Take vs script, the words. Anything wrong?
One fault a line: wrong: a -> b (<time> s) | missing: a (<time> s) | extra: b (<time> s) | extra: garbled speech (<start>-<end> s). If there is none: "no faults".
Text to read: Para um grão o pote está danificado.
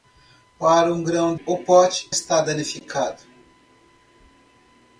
no faults